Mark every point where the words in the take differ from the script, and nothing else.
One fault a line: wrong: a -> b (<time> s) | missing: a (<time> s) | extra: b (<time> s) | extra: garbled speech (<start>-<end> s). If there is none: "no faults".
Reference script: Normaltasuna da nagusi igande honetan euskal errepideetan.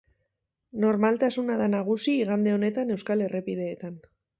no faults